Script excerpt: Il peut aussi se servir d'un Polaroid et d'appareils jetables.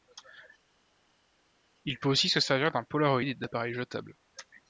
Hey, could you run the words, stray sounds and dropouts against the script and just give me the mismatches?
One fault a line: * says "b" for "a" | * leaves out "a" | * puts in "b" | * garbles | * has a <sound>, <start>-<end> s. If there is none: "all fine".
all fine